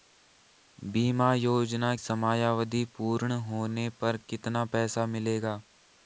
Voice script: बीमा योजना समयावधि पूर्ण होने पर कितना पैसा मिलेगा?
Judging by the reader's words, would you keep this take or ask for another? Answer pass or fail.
pass